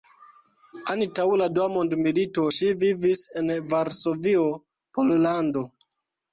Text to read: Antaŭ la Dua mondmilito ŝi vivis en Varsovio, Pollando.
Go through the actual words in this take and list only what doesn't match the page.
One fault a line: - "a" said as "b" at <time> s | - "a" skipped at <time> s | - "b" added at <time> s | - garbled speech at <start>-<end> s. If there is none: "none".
none